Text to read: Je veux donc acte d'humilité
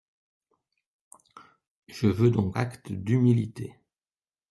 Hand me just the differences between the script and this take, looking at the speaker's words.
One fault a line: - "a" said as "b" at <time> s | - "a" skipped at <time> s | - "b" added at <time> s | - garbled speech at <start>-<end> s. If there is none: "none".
none